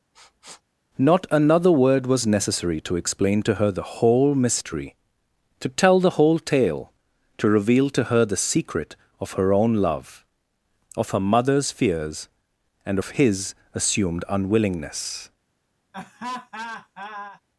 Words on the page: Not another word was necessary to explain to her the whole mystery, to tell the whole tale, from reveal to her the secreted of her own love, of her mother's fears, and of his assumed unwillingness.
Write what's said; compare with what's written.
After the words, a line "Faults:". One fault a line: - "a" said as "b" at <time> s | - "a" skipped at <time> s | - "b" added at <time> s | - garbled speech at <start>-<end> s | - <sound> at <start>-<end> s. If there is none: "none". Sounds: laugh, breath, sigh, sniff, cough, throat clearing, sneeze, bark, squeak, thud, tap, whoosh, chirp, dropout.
Not another word was necessary to explain to her the whole mystery, to tell the whole tale, to reveal to her the secret of her own love, of her mother's fears, and of his assumed unwillingness.
Faults:
- sniff at 0.1-0.6 s
- "from" said as "to" at 7.4 s
- "secreted" said as "secret" at 8.4 s
- laugh at 15.9-17.4 s